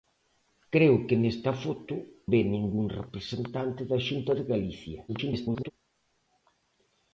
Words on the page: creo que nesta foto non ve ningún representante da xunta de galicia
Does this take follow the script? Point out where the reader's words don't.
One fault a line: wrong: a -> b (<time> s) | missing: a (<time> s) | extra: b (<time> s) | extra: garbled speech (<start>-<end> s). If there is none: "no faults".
missing: non (1.9 s)
extra: garbled speech (5.1-5.7 s)